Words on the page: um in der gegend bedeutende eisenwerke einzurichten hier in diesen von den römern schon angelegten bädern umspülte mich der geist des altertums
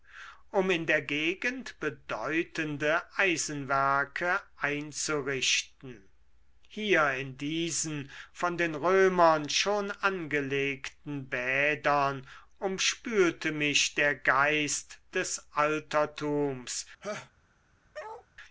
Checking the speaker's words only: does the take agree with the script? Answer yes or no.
yes